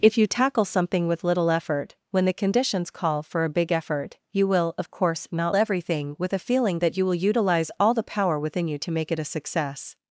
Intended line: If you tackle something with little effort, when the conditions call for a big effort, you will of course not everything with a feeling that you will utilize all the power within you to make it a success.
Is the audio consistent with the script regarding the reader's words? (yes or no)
yes